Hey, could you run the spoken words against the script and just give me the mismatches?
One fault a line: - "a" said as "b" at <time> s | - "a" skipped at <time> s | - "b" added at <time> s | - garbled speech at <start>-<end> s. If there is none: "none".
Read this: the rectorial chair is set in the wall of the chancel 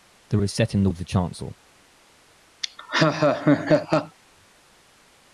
- "rectorial chair" skipped at 0.4 s
- "wall" skipped at 0.9 s